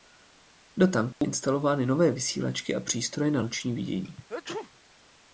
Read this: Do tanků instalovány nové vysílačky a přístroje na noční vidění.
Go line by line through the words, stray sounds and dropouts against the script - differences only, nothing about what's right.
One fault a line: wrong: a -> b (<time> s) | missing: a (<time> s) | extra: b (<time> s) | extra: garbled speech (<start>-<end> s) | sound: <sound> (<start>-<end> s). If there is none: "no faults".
sound: dropout (1.1-1.2 s)
sound: sneeze (4.3-4.7 s)